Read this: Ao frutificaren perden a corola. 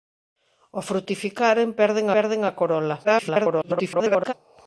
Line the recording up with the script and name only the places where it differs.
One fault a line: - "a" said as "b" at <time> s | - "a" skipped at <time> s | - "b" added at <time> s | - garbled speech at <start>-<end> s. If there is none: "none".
- "perden" added at 2.1 s
- garbled speech at 3.0-4.3 s